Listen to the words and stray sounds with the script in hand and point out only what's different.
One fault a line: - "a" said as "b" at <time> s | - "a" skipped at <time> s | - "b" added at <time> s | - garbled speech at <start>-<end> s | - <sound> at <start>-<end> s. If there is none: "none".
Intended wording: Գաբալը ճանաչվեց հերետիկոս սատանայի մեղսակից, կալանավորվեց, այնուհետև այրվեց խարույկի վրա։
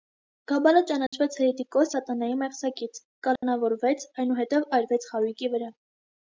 - dropout at 1.1-1.1 s
- dropout at 3.4-3.4 s